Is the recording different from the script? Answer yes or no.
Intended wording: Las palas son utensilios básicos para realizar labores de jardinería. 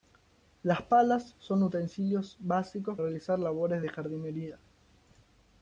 yes